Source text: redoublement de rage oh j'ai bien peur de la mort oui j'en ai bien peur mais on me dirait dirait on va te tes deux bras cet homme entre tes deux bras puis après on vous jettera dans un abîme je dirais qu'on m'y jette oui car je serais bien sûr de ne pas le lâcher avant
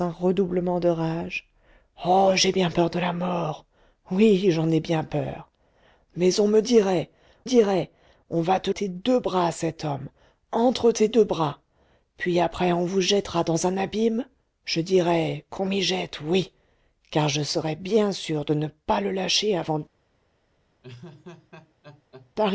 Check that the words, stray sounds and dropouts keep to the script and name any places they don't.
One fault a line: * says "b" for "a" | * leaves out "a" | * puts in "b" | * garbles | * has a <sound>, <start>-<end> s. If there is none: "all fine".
* has a laugh, 20.8-22.3 s